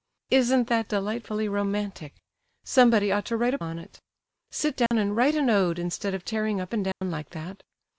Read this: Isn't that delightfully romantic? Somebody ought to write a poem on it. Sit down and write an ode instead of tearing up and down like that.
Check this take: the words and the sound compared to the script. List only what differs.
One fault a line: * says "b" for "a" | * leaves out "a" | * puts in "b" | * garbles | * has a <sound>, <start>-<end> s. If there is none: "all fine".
* leaves out "poem"
* has a dropout, 4.9-4.9 s
* has a dropout, 6.9-7.0 s